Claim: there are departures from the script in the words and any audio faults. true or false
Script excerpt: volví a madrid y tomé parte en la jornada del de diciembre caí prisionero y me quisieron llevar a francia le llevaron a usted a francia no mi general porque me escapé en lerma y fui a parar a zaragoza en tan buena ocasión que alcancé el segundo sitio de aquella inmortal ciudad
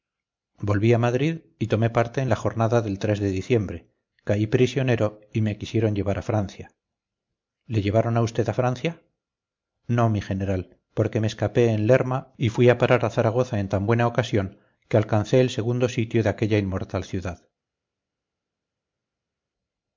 false